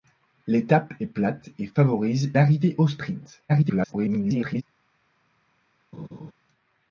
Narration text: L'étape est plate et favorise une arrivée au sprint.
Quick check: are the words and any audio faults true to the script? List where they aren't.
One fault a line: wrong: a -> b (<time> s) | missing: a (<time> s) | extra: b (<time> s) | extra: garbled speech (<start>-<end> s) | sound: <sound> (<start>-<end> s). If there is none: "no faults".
missing: une (2.3 s)
extra: garbled speech (3.5-4.6 s)
sound: laugh (5.9-6.3 s)